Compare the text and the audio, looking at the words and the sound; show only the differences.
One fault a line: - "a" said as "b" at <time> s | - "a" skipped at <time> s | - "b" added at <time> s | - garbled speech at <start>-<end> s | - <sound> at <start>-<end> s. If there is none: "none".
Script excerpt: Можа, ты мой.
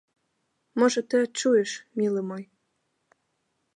- "адчуеш мілы" added at 1.2 s